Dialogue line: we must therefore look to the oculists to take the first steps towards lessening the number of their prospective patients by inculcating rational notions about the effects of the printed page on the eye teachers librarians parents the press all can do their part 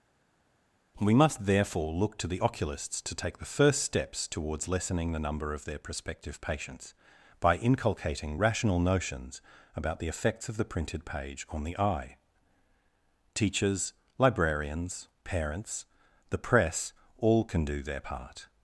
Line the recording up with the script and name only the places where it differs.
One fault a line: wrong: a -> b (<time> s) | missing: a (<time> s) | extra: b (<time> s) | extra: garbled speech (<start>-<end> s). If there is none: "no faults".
no faults